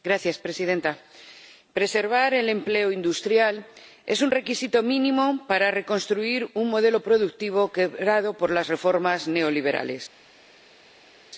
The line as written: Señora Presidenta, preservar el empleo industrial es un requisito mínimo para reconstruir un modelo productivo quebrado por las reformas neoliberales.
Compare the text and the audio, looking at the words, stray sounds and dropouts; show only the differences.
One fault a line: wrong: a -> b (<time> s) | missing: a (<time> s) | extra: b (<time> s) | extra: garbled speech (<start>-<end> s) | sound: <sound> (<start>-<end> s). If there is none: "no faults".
no faults